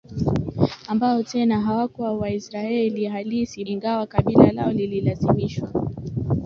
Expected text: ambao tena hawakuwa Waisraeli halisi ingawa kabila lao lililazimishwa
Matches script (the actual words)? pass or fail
pass